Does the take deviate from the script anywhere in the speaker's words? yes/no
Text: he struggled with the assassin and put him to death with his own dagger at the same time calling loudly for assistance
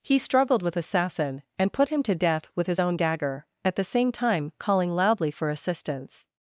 yes